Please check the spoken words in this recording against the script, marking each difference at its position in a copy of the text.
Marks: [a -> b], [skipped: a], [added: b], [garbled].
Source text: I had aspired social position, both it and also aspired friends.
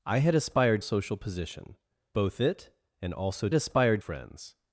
I had aspired social position, both it and also aspired friends.